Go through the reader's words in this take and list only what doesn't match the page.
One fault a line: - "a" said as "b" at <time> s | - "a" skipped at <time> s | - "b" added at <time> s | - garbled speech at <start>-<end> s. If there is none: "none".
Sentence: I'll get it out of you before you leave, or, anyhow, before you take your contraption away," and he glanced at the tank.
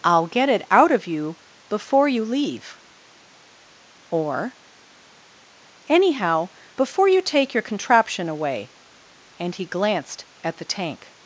none